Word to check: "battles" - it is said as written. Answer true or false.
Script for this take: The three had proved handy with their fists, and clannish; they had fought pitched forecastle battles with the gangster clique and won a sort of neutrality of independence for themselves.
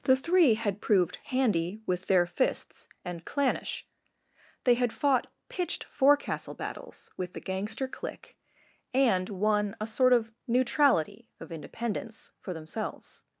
true